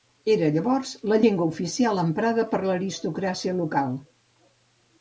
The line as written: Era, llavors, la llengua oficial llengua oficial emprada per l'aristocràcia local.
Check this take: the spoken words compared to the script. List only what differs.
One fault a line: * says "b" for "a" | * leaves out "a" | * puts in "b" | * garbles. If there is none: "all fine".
* leaves out "llengua oficial"